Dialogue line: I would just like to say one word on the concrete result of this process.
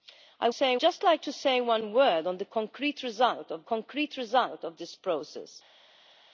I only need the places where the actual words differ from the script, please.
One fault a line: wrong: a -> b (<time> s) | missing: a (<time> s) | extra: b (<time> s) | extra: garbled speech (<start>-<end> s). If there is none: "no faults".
wrong: would -> say (0.5 s)
extra: concrete result of (3.6 s)